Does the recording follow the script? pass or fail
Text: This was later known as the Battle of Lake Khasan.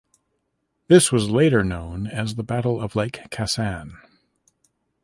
pass